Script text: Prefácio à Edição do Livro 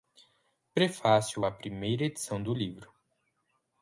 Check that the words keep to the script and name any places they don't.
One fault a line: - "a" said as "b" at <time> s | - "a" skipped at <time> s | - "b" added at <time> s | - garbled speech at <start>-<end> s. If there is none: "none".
- "Primeira" added at 1.5 s